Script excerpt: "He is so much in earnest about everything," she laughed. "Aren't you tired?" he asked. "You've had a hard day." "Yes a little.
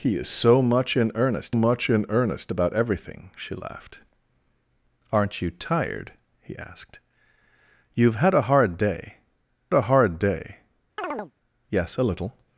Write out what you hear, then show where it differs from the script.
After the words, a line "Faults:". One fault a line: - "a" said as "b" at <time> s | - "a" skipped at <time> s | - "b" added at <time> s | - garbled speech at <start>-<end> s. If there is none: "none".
"He is so much in earnest much in earnest about everything," she laughed. "Aren't you tired?" he asked. "You've had a hard day a hard day." "Yes a little.
Faults:
- "much in earnest" added at 1.5 s
- "a hard day" added at 9.7 s